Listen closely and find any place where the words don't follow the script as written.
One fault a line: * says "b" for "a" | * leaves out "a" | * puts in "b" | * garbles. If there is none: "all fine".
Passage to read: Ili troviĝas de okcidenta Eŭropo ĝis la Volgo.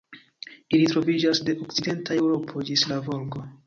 all fine